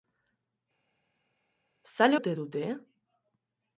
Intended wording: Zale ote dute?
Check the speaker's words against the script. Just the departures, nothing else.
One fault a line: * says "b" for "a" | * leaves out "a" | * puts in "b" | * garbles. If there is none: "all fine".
all fine